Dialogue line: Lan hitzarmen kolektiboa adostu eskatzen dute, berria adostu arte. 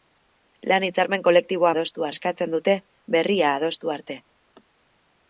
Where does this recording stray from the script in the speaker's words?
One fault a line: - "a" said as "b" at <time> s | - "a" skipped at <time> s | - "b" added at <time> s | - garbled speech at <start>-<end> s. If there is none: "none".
none